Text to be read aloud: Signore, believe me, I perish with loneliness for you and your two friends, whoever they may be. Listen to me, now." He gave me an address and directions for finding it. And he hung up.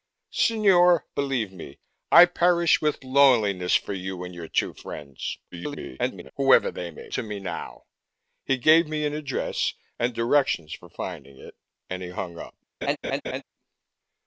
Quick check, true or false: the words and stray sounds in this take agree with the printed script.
false